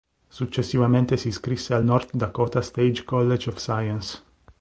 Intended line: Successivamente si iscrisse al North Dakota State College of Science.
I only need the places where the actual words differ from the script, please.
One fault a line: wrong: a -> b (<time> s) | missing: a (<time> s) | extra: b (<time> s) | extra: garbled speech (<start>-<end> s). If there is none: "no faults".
no faults